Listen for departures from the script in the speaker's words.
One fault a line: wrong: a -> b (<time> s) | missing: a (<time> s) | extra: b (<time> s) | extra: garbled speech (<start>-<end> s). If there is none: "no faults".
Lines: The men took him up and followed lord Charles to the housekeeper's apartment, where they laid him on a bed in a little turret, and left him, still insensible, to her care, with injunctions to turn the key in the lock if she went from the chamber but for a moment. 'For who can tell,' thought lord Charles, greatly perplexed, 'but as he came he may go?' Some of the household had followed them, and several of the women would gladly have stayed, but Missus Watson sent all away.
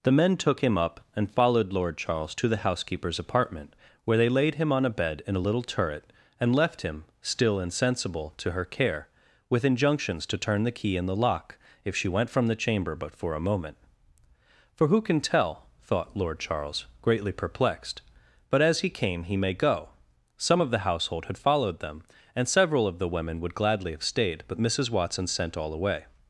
no faults